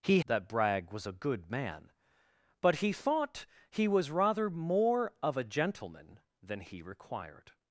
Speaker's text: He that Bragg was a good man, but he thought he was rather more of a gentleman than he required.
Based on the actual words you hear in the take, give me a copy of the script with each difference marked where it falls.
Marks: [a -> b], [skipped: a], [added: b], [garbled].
He that Bragg was a good man, but he thought he was rather more of a gentleman than he required.